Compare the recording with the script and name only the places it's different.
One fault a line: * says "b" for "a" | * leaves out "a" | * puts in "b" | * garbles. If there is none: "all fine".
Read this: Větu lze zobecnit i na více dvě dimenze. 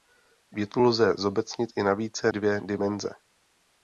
all fine